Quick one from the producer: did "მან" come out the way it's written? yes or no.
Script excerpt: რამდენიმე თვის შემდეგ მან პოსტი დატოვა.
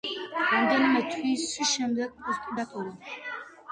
no